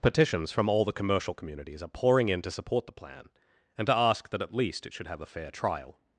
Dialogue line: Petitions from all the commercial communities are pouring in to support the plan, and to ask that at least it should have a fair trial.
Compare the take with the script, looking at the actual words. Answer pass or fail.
pass